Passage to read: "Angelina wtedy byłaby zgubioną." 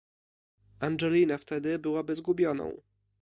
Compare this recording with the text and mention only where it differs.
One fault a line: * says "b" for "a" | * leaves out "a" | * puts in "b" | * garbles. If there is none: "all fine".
all fine